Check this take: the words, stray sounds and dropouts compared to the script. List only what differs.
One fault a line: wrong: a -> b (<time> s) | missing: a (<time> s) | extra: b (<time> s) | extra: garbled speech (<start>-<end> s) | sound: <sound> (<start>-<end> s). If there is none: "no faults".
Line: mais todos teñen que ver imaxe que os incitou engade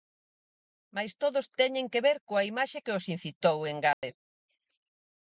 extra: coa (2.3 s)
sound: dropout (3.9-4.0 s)